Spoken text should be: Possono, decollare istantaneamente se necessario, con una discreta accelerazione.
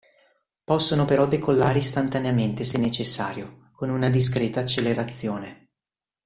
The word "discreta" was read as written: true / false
true